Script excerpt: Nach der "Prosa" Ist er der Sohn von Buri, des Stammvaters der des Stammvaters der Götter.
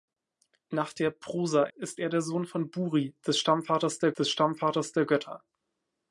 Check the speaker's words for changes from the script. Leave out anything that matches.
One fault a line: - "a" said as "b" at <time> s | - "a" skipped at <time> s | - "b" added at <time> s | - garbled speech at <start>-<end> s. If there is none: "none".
none